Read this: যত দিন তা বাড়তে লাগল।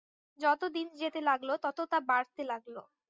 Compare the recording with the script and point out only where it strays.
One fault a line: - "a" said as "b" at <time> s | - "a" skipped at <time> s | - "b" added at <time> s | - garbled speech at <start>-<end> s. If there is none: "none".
- "যেতে লাগল তত" added at 1.0 s